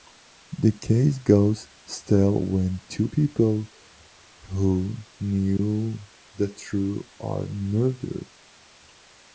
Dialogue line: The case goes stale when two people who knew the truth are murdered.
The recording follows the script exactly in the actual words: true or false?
true